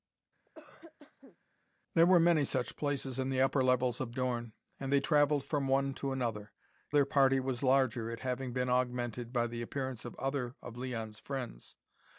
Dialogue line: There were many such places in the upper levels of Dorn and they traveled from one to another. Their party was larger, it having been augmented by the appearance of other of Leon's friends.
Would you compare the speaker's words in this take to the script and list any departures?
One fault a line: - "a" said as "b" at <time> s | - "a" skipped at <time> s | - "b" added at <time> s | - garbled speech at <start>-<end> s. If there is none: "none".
none